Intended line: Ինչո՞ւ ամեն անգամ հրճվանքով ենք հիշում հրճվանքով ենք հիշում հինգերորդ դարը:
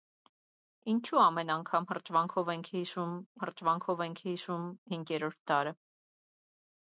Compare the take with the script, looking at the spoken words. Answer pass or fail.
pass